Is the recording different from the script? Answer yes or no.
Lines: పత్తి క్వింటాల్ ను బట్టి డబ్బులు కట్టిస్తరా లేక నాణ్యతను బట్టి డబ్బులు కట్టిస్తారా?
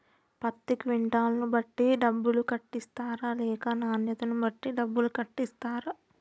no